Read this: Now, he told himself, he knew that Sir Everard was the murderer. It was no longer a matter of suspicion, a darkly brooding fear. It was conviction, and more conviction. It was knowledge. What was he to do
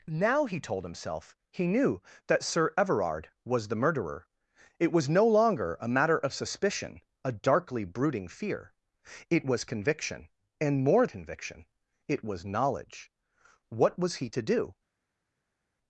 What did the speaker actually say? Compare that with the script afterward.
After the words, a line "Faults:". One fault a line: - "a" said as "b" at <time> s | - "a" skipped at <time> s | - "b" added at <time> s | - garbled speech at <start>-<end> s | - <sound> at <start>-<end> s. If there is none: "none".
Now, he told himself, he knew that Sir Everard was the murderer. It was no longer a matter of suspicion, a darkly brooding fear. It was conviction, and more conviction. It was knowledge. What was he to do
Faults:
none